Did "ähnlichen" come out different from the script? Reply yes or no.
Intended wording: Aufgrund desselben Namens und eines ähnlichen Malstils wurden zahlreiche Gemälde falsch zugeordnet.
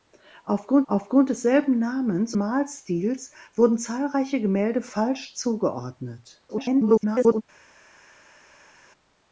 yes